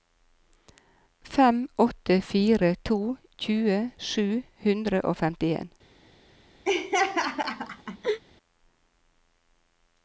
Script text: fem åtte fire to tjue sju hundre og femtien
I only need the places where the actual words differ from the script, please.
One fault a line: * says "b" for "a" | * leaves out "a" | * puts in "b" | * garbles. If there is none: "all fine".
all fine